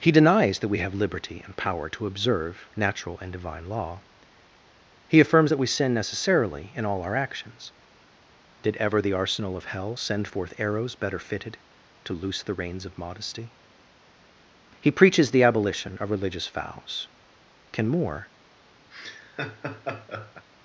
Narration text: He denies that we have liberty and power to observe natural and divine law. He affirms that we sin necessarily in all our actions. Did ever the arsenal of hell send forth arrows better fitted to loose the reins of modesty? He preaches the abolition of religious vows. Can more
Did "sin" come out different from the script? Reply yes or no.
no